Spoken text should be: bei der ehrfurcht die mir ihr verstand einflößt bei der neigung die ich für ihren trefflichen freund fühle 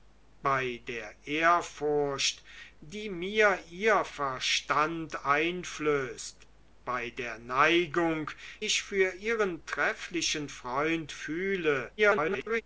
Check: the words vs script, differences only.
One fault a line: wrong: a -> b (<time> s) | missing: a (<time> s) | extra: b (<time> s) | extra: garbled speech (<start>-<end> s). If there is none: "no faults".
missing: die (8.3 s)
extra: garbled speech (12.0-12.6 s)